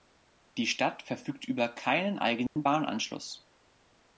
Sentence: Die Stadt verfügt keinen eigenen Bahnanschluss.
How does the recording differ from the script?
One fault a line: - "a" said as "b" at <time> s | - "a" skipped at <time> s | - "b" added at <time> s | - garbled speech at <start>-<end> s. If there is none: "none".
- "über" added at 1.4 s